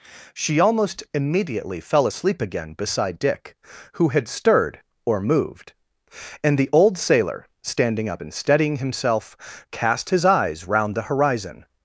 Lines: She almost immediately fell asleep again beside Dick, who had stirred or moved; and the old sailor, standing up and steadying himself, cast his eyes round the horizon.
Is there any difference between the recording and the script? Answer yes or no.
no